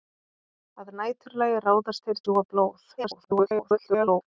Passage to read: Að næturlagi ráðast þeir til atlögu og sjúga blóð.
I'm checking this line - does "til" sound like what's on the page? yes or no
no